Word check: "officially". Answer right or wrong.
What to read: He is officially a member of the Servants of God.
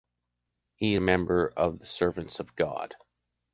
wrong